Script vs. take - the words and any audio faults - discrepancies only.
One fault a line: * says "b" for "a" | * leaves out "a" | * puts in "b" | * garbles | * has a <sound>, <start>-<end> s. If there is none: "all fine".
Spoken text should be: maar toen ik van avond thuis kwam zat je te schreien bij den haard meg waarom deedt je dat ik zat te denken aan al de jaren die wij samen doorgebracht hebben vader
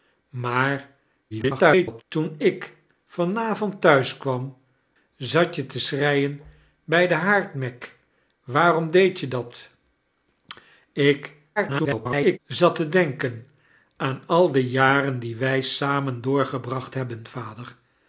* garbles
* garbles